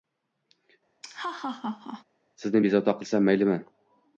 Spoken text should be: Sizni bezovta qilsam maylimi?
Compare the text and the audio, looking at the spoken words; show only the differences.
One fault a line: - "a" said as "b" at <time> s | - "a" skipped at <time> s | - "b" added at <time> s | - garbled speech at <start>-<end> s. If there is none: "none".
none